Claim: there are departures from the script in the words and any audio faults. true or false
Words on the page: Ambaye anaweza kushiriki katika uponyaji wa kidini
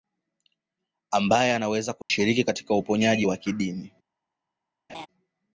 true